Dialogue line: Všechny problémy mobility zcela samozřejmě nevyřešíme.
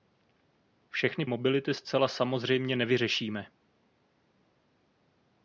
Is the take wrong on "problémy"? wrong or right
wrong